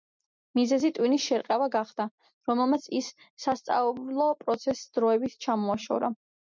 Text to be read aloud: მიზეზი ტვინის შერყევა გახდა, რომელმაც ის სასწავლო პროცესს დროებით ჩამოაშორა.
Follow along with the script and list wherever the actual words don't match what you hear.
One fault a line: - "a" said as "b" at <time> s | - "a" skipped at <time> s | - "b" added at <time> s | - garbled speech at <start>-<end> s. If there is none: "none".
none